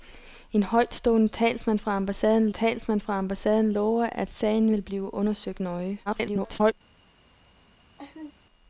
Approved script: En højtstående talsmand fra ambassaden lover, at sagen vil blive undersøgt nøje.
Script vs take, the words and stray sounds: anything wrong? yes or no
yes